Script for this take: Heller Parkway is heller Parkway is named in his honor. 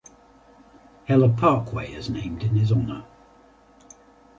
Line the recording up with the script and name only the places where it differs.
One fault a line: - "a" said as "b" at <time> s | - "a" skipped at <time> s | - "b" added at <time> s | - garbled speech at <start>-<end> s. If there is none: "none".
- "heller Parkway is" skipped at 2.1 s